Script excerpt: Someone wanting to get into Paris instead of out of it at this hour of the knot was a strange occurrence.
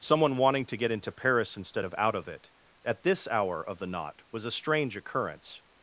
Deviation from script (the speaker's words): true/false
false